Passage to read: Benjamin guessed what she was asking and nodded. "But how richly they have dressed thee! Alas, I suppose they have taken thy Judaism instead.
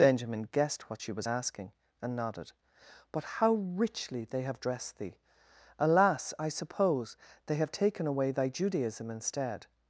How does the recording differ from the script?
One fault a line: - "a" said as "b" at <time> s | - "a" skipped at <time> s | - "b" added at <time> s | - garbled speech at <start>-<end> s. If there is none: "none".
- "away" added at 8.1 s